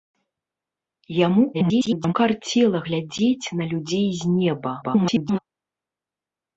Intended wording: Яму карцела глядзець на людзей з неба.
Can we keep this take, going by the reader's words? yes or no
no